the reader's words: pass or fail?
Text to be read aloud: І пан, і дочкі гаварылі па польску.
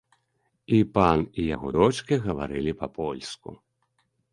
fail